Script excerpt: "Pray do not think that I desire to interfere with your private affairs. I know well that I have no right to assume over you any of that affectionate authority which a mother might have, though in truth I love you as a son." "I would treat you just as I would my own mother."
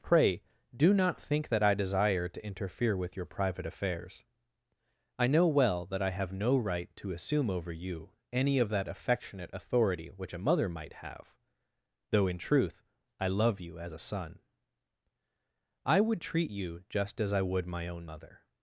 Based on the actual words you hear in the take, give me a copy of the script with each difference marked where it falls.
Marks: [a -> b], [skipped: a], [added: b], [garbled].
"Pray do not think that I desire to interfere with your private affairs. I know well that I have no right to assume over you any of that affectionate authority which a mother might have, though in truth I love you as a son." "I would treat you just as I would my own mother."